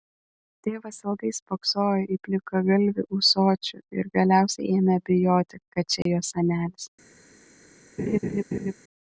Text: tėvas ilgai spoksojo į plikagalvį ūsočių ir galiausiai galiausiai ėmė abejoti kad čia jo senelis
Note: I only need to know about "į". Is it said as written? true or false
true